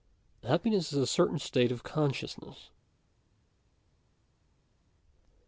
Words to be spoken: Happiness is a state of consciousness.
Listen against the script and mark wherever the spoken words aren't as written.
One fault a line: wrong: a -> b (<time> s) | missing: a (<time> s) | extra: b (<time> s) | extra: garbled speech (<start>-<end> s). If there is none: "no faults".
extra: certain (1.0 s)